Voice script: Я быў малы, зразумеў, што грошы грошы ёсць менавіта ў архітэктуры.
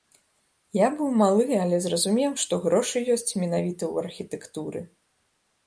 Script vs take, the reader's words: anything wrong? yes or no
yes